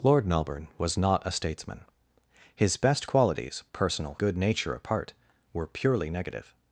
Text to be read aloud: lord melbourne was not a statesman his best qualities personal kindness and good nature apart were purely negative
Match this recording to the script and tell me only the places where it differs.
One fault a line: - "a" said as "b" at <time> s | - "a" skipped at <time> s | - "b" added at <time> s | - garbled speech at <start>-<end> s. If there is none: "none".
- "kindness and" skipped at 4.2 s